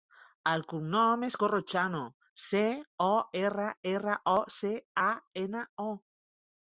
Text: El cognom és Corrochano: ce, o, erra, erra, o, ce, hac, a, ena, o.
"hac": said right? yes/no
no